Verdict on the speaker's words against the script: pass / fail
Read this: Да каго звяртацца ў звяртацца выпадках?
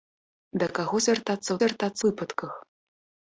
pass